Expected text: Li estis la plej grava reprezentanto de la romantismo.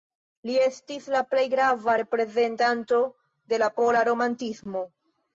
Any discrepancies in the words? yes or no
yes